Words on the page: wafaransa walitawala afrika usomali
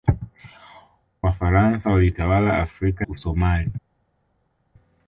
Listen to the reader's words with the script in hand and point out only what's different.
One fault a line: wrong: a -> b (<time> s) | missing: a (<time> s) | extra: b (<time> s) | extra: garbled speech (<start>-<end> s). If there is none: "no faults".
no faults